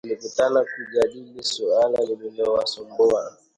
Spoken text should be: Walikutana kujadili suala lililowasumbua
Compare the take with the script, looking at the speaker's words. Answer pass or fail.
pass